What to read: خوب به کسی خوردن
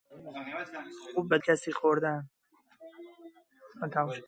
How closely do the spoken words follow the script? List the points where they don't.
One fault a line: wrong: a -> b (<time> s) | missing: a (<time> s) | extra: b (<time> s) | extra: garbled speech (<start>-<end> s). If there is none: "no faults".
no faults